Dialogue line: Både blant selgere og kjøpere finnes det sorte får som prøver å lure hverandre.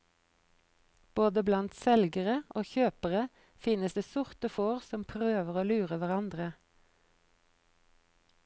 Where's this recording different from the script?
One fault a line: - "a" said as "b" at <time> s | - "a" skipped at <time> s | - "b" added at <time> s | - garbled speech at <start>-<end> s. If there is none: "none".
none